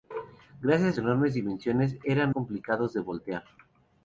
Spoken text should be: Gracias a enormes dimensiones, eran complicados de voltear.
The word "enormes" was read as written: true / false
true